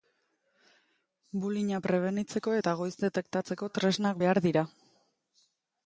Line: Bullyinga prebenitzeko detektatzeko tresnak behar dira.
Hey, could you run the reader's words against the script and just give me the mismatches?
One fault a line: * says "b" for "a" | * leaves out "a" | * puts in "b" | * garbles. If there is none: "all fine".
* puts in "eta goiz"